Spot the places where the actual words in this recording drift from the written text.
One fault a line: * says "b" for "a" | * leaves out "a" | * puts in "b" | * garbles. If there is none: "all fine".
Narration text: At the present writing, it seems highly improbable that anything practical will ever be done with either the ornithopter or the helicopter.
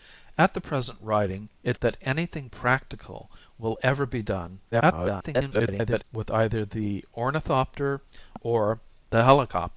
* leaves out "seems highly improbable"
* garbles